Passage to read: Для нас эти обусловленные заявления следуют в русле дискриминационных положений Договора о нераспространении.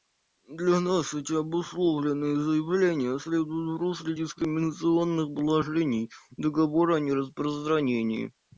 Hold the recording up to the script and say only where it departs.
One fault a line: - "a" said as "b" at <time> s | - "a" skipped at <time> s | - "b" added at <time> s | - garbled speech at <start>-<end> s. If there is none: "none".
none